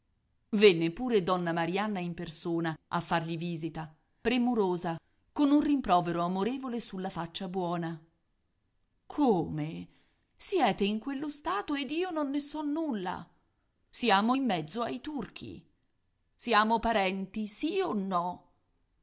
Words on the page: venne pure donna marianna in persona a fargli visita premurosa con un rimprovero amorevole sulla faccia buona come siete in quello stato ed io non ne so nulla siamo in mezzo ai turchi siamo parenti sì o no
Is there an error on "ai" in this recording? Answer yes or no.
no